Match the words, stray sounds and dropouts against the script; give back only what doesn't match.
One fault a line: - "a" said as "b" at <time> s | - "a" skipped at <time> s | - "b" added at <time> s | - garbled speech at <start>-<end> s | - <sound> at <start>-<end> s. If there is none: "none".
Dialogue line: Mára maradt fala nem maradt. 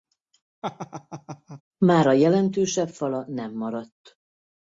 - laugh at 0.6-1.6 s
- "maradt" said as "jelentősebb" at 2.1 s